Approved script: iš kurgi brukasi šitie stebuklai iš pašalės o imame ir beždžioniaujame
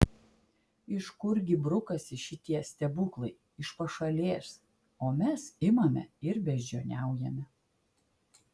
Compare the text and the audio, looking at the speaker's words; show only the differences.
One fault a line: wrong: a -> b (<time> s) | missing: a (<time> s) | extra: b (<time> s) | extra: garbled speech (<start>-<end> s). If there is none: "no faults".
extra: mes (5.2 s)